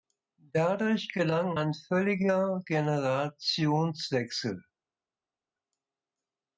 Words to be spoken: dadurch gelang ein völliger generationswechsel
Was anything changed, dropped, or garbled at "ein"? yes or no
no